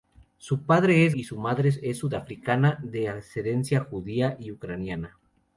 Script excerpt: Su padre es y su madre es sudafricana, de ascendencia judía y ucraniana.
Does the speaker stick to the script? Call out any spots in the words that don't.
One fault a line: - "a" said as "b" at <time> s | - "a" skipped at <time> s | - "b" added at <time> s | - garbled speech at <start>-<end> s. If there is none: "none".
none